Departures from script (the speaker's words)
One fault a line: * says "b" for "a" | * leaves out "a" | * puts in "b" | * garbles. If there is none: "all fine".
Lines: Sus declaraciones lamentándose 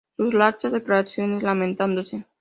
* puts in "laxas"